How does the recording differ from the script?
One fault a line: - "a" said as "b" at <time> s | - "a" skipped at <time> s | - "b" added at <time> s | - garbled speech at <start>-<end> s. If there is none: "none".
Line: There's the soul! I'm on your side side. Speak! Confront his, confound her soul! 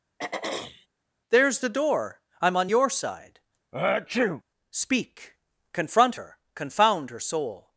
- "soul" said as "door" at 1.7 s
- "side" skipped at 3.4 s
- "his" said as "her" at 6.1 s